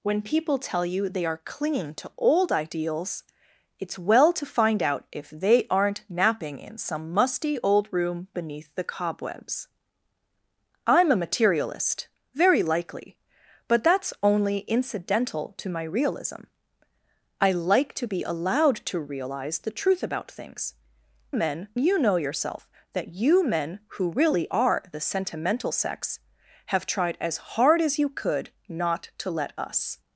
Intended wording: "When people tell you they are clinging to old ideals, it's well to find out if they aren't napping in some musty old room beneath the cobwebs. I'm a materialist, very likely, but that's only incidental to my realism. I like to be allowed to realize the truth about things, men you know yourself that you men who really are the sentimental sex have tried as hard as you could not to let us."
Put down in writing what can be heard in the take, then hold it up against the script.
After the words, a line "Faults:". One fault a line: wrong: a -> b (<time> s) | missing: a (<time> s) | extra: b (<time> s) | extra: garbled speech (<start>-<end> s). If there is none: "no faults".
"When people tell you they are clinging to old ideals, it's well to find out if they aren't napping in some musty old room beneath the cobwebs. I'm a materialist, very likely, but that's only incidental to my realism. I like to be allowed to realize the truth about things, men you know yourself that you men who really are the sentimental sex have tried as hard as you could not to let us."
Faults:
no faults